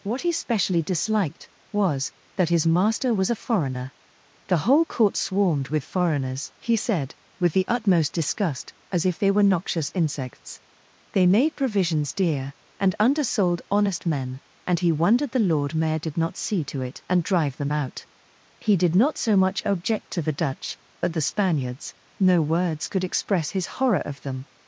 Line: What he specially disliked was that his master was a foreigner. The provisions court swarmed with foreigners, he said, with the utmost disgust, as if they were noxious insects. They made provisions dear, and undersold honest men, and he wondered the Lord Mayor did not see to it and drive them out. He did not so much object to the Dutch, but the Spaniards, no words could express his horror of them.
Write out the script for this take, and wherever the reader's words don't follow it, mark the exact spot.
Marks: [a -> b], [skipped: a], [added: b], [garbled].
What he specially disliked was that his master was a foreigner. The [provisions -> whole] court swarmed with foreigners, he said, with the utmost disgust, as if they were noxious insects. They made provisions dear, and undersold honest men, and he wondered the Lord Mayor did not see to it and drive them out. He did not so much object to the Dutch, but the Spaniards, no words could express his horror of them.